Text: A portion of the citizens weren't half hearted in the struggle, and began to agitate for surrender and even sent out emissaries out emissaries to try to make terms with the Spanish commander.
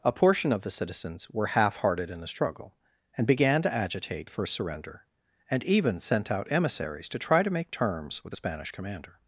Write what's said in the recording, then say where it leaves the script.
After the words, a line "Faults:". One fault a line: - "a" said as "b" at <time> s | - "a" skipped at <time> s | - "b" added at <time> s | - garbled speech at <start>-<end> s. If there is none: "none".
A portion of the citizens were half hearted in the struggle, and began to agitate for surrender and even sent out emissaries to try to make terms with the Spanish commander.
Faults:
- "weren't" said as "were" at 1.3 s
- "out emissaries" skipped at 7.1 s